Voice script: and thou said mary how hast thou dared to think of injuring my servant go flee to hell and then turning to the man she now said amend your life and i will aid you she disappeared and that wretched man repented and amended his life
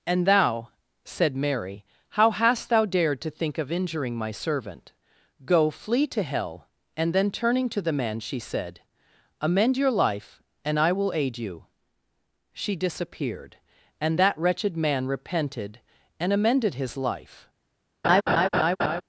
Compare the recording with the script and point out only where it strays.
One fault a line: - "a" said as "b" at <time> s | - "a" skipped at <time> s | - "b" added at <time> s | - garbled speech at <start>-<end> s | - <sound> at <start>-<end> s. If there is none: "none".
- "now" skipped at 8.4 s
- laugh at 18.0-19.0 s